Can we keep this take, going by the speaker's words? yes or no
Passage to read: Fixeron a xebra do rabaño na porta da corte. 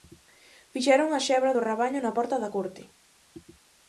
yes